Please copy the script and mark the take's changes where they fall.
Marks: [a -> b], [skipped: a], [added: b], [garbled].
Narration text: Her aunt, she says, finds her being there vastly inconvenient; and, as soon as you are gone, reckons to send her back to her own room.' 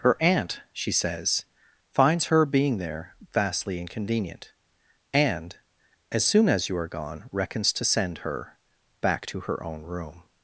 Her aunt, she says, finds her being there vastly inconvenient; and, as soon as you are gone, reckons to send her back to her own room.'